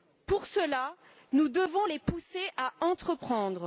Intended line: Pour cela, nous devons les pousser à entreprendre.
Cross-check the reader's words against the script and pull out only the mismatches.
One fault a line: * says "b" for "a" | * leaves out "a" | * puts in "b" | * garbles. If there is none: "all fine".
all fine